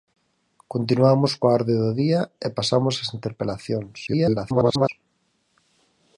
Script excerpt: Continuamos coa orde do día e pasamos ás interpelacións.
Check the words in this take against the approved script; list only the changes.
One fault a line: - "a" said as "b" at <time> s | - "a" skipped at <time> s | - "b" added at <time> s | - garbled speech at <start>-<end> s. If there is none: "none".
- garbled speech at 4.1-4.9 s